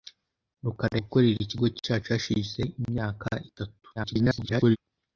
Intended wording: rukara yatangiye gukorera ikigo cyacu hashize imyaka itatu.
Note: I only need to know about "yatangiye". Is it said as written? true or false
false